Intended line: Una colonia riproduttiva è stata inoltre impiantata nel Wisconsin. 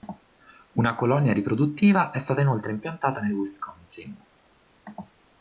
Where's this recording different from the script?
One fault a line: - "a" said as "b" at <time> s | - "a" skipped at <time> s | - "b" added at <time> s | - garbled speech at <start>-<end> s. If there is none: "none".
none